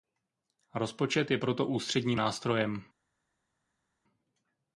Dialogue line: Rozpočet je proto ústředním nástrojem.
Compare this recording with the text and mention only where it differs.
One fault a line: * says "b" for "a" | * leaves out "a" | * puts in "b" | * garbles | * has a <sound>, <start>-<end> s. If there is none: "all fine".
all fine